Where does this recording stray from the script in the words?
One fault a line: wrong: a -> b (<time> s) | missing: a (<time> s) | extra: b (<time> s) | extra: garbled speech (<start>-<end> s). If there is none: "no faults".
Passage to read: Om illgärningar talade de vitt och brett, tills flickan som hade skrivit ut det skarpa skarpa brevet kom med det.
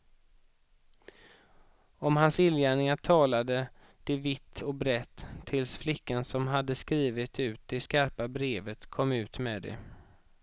extra: hans (2.2 s)
missing: skarpa (8.3 s)
extra: ut (9.1 s)